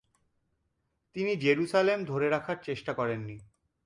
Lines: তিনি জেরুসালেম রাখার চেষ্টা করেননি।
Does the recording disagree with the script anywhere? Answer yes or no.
yes